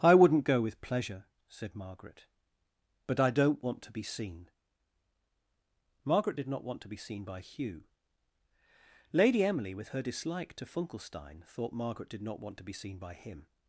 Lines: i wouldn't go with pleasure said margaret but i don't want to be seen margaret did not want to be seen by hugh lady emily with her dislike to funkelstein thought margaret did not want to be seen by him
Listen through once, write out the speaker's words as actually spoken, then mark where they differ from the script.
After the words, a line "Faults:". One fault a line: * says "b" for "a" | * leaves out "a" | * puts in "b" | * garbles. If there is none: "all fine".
i wouldn't go with pleasure said margaret but i don't want to be seen margaret did not want to be seen by hugh lady emily with her dislike to funkelstein thought margaret did not want to be seen by him
Faults:
all fine